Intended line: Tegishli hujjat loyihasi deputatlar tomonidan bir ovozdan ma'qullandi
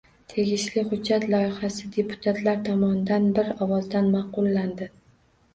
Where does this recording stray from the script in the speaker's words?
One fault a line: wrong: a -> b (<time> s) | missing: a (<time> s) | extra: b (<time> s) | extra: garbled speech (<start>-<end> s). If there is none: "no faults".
no faults